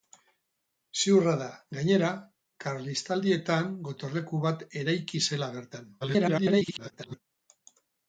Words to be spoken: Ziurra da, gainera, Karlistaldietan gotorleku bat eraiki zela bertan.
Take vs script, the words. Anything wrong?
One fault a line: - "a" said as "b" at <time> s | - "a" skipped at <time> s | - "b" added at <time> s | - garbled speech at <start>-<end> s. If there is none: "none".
- garbled speech at 6.0-7.2 s